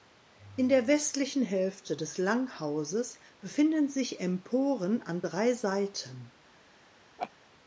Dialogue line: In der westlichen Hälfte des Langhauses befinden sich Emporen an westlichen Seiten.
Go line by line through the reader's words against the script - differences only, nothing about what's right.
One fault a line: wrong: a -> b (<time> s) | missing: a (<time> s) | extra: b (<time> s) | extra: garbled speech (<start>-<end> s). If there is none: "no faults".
wrong: westlichen -> drei (5.2 s)